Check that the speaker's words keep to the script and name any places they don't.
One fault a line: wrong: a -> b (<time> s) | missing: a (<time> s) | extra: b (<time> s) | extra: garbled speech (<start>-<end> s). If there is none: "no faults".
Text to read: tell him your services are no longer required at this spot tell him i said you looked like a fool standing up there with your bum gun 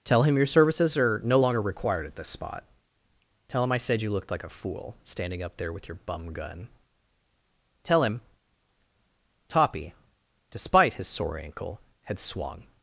extra: tell him toppy despite his sore ankle had swung (7.8 s)